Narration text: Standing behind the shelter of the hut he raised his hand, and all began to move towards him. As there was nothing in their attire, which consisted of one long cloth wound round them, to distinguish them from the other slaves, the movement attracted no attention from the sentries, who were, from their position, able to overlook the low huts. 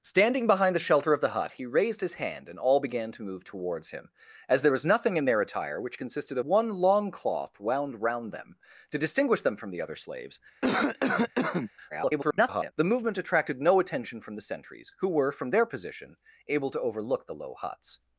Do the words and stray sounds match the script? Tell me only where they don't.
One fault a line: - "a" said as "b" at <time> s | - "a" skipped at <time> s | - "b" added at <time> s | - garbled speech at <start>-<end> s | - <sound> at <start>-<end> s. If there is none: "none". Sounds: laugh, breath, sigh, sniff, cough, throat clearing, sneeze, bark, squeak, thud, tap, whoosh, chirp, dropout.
- "of" skipped at 6.4 s
- cough at 10.6-11.7 s
- garbled speech at 11.9-12.7 s